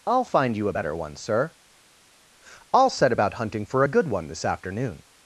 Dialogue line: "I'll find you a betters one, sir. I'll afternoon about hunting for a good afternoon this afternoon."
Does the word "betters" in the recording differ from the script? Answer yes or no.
yes